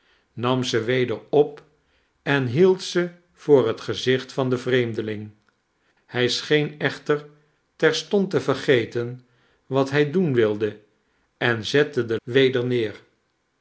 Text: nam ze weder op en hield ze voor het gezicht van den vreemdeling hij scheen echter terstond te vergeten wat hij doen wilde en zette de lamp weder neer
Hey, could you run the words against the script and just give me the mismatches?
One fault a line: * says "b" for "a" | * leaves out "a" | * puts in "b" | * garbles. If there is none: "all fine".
* leaves out "lamp"